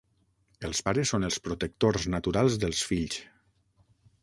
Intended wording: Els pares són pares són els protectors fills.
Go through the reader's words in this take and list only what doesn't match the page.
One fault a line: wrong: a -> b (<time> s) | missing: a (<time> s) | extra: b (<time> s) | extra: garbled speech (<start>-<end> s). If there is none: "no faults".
wrong: pares són els protectors -> els protectors naturals dels (1.3 s)